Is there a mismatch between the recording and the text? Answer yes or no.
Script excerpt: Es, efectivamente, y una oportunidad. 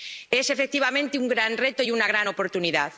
yes